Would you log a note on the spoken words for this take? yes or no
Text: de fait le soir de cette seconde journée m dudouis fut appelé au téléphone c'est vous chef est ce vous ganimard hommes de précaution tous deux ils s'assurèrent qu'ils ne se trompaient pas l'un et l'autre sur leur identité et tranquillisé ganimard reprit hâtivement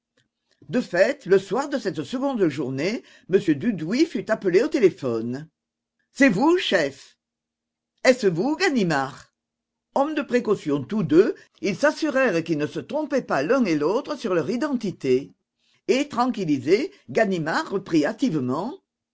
no